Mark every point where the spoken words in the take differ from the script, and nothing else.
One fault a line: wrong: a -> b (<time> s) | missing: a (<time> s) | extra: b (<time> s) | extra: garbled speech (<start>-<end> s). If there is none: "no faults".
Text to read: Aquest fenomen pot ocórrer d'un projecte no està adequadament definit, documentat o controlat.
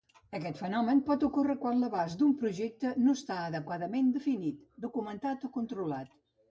extra: quan l'abast (1.6 s)